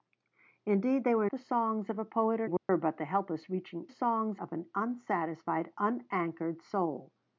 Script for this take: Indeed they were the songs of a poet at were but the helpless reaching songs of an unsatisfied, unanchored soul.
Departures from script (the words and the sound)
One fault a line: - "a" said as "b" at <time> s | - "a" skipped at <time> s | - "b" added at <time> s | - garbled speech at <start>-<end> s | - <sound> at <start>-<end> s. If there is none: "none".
- dropout at 2.6-2.7 s